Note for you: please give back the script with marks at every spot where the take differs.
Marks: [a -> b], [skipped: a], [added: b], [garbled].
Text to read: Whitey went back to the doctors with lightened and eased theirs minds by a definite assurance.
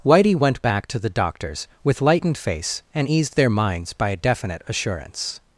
Whitey went back to the doctors with lightened [added: face] and eased [theirs -> their] minds by a definite assurance.